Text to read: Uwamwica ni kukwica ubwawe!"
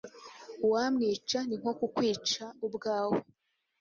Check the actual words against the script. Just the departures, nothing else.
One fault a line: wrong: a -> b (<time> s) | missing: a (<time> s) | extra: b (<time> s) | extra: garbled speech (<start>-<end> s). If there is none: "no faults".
extra: nko (1.6 s)